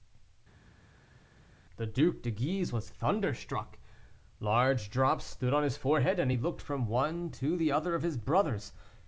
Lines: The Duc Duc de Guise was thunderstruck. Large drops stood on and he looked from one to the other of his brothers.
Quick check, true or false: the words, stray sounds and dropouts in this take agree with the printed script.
false